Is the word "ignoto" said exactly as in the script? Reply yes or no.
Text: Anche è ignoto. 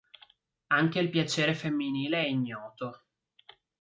yes